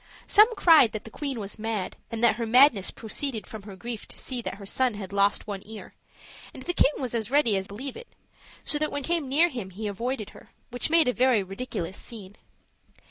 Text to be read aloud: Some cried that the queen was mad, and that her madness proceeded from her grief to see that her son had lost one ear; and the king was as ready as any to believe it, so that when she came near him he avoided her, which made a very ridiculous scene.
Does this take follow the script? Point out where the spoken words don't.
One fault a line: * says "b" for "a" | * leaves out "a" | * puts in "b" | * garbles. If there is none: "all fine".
* leaves out "any to"
* leaves out "she"